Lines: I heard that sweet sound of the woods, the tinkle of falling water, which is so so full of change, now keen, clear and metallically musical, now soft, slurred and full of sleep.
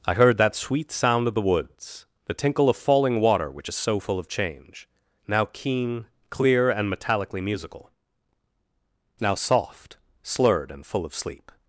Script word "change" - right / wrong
right